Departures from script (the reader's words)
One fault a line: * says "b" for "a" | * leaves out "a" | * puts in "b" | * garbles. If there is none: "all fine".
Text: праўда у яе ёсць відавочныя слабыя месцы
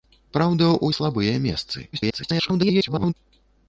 * leaves out "яе ёсць відавочныя"
* garbles